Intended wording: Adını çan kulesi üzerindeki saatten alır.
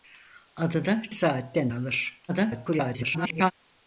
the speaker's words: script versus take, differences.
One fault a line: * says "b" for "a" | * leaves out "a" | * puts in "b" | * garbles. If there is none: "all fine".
* leaves out "çan kulesi üzerindeki"
* garbles